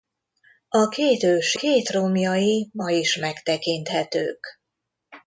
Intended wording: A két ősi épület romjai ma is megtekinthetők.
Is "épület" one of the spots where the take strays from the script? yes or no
yes